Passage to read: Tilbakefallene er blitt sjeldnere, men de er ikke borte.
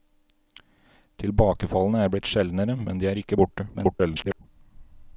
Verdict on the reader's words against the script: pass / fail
fail